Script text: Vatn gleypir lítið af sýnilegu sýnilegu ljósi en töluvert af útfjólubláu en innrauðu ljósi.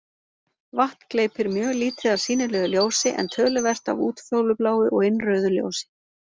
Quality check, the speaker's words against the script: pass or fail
fail